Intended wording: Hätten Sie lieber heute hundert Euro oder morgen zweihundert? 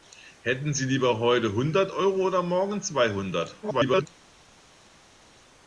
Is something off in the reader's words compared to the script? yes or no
yes